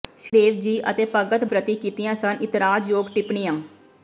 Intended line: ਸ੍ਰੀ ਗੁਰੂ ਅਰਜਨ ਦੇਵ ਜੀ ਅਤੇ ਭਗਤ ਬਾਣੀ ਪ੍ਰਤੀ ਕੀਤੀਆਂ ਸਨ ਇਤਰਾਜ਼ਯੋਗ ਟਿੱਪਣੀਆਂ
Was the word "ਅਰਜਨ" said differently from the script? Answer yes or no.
yes